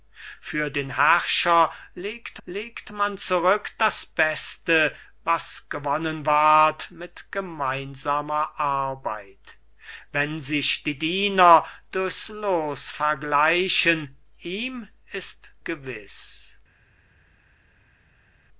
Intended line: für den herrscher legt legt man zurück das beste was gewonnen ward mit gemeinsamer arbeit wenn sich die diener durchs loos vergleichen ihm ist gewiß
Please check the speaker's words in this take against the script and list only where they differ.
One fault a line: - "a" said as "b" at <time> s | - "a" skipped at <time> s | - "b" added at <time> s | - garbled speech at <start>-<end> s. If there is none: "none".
none